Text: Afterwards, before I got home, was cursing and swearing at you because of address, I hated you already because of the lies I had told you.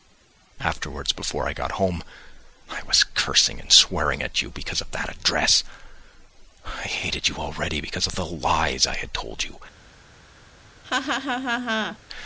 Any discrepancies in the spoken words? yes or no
yes